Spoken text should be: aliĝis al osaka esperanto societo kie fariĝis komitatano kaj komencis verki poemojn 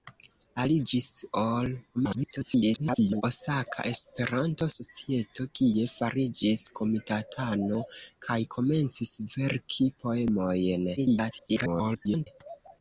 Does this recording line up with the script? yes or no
no